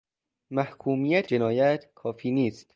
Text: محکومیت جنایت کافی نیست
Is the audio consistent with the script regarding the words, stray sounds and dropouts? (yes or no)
yes